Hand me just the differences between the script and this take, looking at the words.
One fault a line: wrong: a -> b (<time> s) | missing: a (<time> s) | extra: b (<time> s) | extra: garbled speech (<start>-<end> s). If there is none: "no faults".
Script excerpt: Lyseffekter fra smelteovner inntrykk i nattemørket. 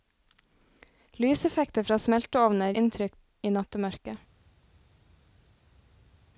no faults